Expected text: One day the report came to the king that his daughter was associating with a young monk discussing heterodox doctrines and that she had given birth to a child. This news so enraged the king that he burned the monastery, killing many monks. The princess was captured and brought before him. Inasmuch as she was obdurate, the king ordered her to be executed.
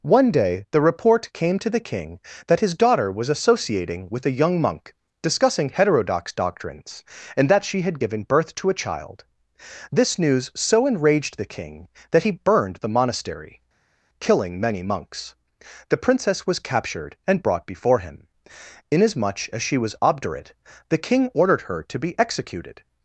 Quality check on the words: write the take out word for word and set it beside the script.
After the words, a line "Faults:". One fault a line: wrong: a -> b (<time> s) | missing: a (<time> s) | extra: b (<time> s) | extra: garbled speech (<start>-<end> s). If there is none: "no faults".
One day the report came to the king that his daughter was associating with a young monk discussing heterodox doctrines and that she had given birth to a child. This news so enraged the king that he burned the monastery, killing many monks. The princess was captured and brought before him. Inasmuch as she was obdurate, the king ordered her to be executed.
Faults:
no faults